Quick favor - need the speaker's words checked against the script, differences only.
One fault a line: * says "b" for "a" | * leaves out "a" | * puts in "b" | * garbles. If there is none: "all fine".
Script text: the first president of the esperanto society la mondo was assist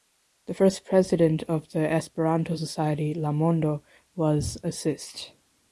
all fine